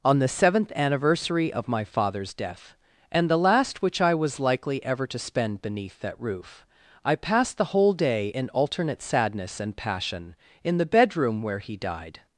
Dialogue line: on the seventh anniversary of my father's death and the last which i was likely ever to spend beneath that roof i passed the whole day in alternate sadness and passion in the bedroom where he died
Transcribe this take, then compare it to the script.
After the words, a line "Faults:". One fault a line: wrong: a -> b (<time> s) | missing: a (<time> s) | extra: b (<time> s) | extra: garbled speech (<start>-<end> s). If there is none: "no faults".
on the seventh anniversary of my father's death and the last which i was likely ever to spend beneath that roof i passed the whole day in alternate sadness and passion in the bedroom where he died
Faults:
no faults